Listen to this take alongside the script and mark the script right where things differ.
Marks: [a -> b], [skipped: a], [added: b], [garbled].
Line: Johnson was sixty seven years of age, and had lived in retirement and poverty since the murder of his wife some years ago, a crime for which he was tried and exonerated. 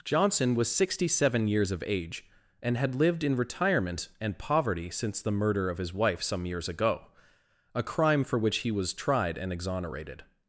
Johnson was sixty seven years of age, and had lived in retirement and poverty since the murder of his wife some years ago, a crime for which he was tried and exonerated.